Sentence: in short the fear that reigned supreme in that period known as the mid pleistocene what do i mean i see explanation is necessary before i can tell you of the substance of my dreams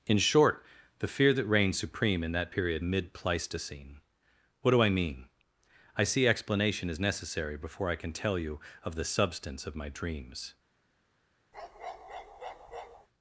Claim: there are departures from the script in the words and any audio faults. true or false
true